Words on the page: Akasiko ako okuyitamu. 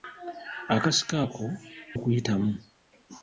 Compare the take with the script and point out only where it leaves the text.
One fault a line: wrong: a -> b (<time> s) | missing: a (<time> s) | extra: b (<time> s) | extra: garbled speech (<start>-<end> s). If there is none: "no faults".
no faults